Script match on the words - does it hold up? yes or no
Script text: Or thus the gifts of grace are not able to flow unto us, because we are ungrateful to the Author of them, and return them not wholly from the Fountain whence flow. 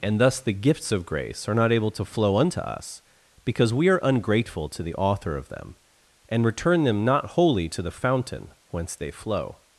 no